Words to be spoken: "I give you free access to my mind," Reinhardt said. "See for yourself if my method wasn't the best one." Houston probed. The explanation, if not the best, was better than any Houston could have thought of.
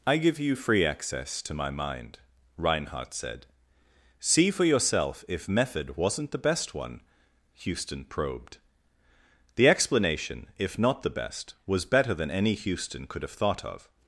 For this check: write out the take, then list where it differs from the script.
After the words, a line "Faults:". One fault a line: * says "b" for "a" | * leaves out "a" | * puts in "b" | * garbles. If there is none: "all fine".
"I give you free access to my mind," Reinhardt said. "See for yourself if method wasn't the best one." Houston probed. The explanation, if not the best, was better than any Houston could have thought of.
Faults:
* leaves out "my"